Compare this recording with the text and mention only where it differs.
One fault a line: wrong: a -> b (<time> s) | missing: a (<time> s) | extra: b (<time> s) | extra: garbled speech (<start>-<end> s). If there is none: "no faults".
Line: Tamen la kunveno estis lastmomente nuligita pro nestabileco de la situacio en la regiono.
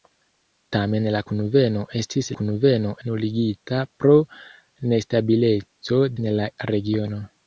wrong: lastmomente -> kunveno (2.4 s)
missing: de la situacio (6.0 s)